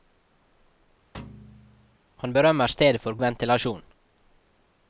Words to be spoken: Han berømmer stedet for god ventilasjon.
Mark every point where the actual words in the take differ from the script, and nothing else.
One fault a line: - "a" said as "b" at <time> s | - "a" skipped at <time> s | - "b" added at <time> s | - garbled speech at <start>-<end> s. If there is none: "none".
- "god" skipped at 3.2 s